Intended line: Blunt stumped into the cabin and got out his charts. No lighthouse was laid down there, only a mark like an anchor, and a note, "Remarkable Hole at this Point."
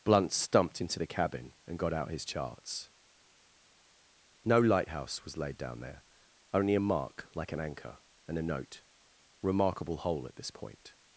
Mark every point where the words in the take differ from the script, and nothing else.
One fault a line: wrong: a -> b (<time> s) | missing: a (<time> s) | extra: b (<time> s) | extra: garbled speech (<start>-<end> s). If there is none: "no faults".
no faults